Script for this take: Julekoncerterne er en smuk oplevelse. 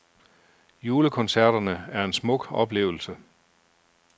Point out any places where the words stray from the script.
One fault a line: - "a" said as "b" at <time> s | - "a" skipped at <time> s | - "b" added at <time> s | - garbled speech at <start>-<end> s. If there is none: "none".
none